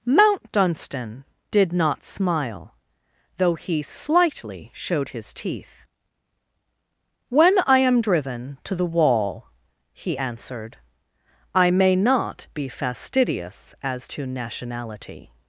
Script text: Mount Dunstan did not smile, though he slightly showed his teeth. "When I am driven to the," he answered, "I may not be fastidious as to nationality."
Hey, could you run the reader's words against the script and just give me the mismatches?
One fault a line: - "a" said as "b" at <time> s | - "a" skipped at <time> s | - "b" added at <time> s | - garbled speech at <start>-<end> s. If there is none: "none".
- "wall" added at 8.9 s